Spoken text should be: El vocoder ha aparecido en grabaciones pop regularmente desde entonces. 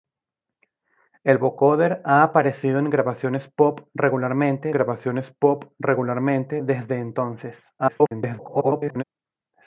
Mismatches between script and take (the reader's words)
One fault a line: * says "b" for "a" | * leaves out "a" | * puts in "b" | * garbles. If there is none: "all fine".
* puts in "grabaciones pop regularmente"
* garbles